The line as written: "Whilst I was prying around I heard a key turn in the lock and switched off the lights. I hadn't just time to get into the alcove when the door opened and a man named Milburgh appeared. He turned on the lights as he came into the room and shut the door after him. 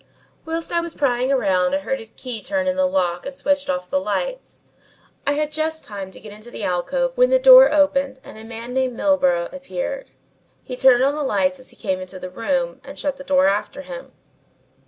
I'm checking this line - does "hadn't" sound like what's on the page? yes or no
no